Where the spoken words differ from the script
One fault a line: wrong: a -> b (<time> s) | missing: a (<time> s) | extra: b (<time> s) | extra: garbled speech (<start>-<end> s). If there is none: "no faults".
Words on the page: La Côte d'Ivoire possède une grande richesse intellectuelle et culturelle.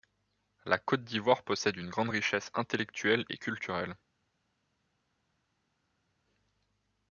no faults